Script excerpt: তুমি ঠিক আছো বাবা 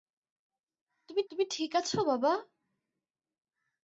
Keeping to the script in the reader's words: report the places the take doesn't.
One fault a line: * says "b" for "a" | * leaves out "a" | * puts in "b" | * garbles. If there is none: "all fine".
* puts in "তুমি"